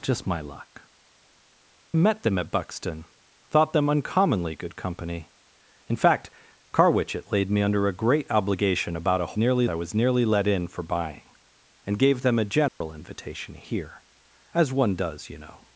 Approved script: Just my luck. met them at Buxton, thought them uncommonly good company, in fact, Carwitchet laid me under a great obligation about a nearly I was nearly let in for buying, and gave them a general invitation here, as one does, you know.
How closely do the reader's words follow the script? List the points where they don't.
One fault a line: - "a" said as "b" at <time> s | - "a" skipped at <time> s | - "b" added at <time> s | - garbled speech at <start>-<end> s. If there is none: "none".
none